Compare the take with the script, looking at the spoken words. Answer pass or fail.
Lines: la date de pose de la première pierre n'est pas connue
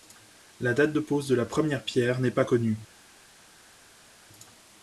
pass